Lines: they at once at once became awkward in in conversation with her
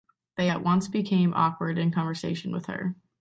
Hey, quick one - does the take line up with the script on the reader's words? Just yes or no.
no